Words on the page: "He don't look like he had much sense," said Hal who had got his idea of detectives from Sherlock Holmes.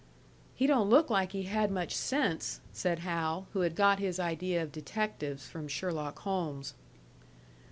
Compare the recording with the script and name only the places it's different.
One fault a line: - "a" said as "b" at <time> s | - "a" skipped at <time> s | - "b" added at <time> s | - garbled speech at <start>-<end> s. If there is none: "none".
none